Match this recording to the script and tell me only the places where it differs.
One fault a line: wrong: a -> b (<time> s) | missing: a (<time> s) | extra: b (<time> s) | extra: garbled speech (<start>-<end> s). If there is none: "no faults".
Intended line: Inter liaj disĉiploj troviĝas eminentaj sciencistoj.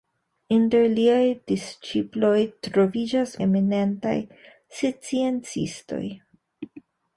no faults